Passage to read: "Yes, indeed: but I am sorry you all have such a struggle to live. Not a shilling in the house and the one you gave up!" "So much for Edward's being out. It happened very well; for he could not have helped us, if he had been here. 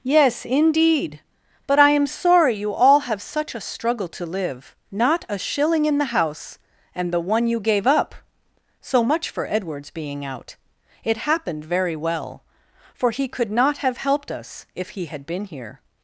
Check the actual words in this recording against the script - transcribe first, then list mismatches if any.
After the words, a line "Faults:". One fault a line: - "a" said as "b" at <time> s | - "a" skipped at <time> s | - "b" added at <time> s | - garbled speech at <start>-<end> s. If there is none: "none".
"Yes, indeed: but I am sorry you all have such a struggle to live. Not a shilling in the house and the one you gave up!" "So much for Edward's being out. It happened very well; for he could not have helped us, if he had been here.
Faults:
none